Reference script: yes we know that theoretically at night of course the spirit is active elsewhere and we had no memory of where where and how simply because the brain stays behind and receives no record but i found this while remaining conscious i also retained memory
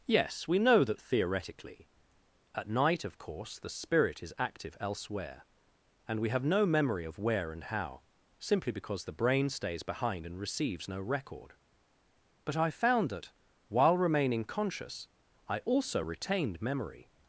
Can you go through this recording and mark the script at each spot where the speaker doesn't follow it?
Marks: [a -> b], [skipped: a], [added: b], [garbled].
yes we know that theoretically at night of course the spirit is active elsewhere and we [had -> have] no memory of where [skipped: where] and how simply because the brain stays behind and receives no record but i found [this -> that] while remaining conscious i also retained memory